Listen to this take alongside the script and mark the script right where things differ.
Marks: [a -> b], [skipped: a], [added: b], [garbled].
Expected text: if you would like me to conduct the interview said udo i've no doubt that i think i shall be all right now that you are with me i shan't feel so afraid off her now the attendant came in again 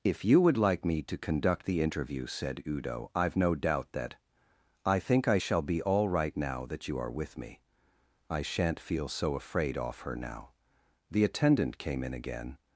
if you would like me to conduct the interview said udo i've no doubt that i think i shall be all right now that you are with me i shan't feel so afraid off her now the attendant came in again